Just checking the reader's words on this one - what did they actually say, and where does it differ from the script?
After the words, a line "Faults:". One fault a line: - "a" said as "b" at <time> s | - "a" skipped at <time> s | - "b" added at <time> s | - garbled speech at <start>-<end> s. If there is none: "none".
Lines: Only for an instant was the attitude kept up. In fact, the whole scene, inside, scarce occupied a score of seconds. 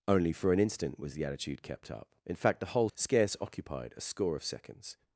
Only for an instant was the attitude kept up. In fact, the whole scarce occupied a score of seconds.
Faults:
- "scene inside" skipped at 2.9 s